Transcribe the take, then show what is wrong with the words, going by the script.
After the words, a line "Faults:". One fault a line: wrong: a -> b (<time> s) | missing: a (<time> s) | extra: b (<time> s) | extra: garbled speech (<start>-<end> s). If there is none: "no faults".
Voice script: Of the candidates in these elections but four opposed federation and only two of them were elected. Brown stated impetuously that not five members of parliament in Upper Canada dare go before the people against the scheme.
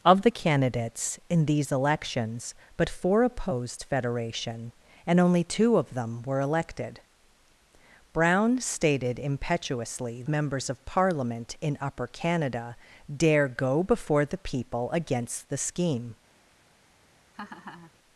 Of the candidates in these elections but four opposed federation and only two of them were elected. Brown stated impetuously members of parliament in Upper Canada dare go before the people against the scheme.
Faults:
missing: that not five (10.2 s)